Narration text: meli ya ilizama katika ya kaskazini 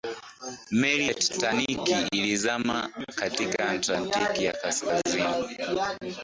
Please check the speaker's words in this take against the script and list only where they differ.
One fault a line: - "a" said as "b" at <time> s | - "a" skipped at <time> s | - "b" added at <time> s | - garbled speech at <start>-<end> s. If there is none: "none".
- "titanic" added at 1.1 s
- "atlantiki" added at 3.7 s